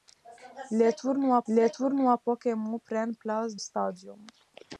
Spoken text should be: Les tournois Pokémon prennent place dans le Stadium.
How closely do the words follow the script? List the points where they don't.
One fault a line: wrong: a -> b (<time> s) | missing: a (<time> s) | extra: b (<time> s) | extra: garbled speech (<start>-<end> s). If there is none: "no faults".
extra: les tournois (1.5 s)
missing: dans le (3.6 s)